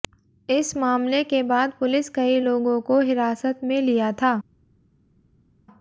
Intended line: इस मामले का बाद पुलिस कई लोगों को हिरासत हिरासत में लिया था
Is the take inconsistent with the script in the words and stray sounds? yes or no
yes